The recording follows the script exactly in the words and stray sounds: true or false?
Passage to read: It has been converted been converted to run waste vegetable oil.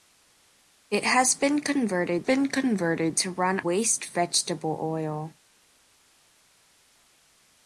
true